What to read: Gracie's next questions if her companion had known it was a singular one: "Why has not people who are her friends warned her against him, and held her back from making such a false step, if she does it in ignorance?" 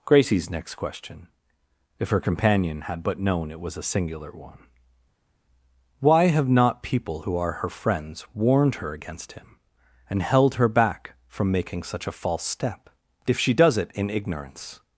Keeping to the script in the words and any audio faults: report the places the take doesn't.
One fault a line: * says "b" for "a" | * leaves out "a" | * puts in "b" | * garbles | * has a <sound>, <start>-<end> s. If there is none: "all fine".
* says "question" for "questions"
* puts in "but"
* says "have" for "has"